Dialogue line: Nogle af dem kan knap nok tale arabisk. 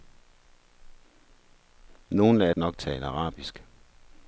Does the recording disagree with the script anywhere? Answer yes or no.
yes